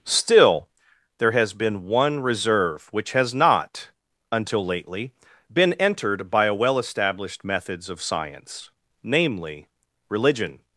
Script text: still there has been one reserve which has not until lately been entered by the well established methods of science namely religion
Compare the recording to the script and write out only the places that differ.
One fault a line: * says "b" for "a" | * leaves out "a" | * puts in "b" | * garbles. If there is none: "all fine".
* says "a" for "the"